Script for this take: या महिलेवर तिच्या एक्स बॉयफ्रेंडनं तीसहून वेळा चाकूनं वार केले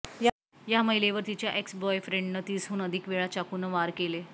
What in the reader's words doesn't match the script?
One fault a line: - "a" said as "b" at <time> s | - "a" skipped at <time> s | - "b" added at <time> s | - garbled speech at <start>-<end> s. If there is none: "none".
- "अधिक" added at 2.8 s